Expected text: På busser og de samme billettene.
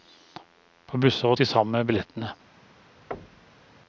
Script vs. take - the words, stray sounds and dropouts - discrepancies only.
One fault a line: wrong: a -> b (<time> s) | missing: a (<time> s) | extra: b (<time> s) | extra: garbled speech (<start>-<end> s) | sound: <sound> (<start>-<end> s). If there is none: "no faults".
sound: thud (3.1-3.7 s)